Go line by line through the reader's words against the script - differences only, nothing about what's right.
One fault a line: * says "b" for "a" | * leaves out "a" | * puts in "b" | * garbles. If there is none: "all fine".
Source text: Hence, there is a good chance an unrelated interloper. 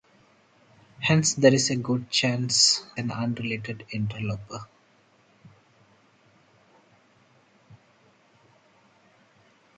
all fine